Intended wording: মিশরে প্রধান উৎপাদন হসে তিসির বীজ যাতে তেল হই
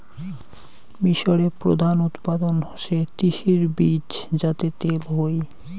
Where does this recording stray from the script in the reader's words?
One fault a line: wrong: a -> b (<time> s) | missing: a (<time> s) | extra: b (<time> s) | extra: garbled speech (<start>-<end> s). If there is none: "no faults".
no faults